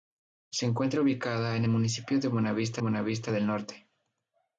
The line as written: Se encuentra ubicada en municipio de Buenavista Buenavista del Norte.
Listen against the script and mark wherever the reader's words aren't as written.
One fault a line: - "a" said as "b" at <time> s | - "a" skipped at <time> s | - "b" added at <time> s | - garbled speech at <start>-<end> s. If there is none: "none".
none